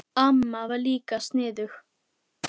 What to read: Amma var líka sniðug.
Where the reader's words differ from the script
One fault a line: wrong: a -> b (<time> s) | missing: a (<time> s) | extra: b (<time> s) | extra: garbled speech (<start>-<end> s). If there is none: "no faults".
no faults